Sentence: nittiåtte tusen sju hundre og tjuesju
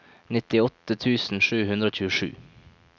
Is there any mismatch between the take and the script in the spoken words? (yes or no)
no